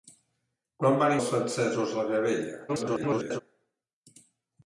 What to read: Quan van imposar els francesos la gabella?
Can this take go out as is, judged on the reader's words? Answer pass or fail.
fail